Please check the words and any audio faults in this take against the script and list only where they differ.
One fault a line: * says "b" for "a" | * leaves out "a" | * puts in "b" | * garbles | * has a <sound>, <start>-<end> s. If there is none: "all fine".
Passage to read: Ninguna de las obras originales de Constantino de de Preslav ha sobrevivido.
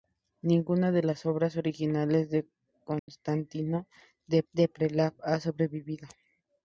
* has a dropout, 3.0-3.1 s